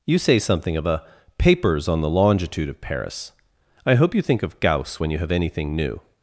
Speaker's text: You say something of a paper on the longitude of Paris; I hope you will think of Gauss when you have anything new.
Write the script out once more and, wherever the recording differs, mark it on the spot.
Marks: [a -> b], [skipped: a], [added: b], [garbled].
You say something of a [paper -> papers] on the longitude of Paris; I hope you [skipped: will] think of Gauss when you have anything new.